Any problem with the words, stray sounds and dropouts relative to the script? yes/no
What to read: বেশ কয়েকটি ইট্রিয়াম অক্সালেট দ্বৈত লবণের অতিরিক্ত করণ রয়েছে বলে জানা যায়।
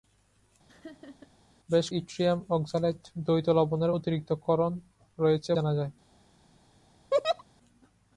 yes